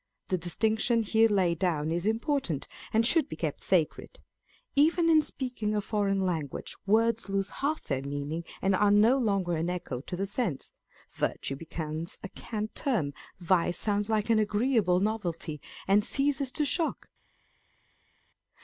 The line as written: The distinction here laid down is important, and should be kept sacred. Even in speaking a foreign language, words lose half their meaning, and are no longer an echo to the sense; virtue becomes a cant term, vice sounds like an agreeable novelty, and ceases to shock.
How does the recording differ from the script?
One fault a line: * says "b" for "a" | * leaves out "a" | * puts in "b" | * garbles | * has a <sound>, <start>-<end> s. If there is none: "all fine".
all fine